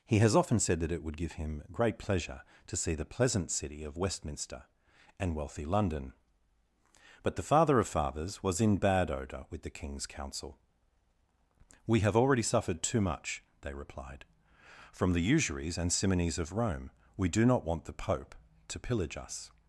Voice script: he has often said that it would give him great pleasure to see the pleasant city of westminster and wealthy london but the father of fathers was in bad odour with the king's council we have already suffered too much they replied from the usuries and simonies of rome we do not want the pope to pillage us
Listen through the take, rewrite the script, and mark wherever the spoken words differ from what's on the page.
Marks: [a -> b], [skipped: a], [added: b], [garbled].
he has often said that it would give him great pleasure to see the pleasant city of westminster and wealthy london but the father of fathers was in bad odour with the king's council we have already suffered too much they replied from the usuries and simonies of rome we do not want the pope to pillage us